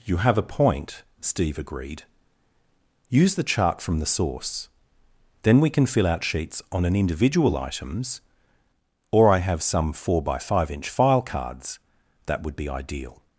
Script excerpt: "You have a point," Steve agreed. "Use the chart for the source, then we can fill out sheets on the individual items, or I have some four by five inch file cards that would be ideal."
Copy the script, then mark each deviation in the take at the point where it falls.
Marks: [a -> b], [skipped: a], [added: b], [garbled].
"You have a point," Steve agreed. "Use the chart [for -> from] the source, then we can fill out sheets on [the -> an] individual items, or I have some four by five inch file cards that would be ideal."